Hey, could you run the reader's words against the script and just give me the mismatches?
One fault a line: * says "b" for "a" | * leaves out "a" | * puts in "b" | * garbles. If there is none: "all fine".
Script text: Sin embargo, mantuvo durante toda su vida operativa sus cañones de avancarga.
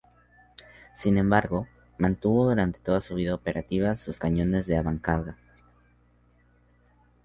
all fine